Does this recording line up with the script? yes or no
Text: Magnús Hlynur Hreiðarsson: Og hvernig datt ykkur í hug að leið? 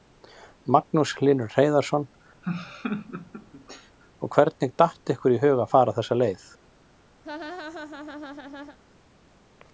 no